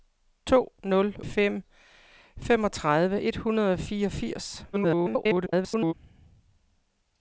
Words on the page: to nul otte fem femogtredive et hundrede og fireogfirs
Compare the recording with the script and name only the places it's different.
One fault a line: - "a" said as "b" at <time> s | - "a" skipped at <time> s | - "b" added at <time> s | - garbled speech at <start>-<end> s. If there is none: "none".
- "otte" skipped at 1.1 s
- garbled speech at 4.7-5.9 s